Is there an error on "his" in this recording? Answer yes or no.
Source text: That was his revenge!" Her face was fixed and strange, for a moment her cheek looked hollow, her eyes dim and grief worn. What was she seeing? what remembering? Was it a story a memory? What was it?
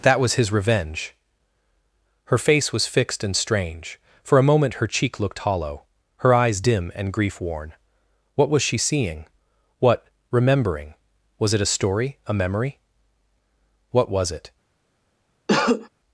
no